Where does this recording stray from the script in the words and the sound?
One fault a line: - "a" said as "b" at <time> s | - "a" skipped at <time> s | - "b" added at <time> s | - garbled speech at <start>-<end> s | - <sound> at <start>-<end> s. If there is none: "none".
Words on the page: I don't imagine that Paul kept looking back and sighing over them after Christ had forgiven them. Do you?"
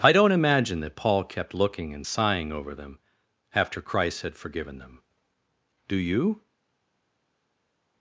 - "back" skipped at 1.9 s